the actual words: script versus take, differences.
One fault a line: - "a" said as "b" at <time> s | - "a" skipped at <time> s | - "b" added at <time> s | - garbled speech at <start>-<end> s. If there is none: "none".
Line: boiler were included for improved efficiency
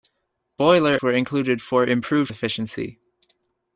none